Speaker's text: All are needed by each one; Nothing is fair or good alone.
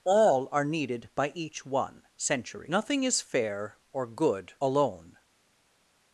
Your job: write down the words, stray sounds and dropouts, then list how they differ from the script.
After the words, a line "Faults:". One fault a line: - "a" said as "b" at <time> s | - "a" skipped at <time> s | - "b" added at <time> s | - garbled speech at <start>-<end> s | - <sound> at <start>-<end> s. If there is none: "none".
All are needed by each one; century Nothing is fair or good alone.
Faults:
- "century" added at 2.2 s